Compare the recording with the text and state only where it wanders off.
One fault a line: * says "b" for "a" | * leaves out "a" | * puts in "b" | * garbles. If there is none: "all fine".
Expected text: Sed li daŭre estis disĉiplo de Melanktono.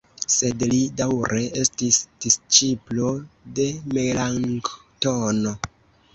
all fine